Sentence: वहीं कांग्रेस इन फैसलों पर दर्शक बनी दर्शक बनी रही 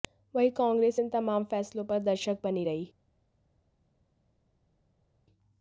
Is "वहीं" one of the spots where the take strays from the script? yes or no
no